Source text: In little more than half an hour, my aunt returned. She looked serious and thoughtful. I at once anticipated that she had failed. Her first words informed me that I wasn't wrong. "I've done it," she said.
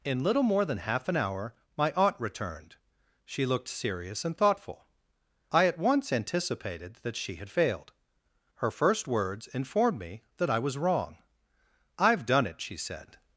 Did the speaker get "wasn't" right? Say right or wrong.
wrong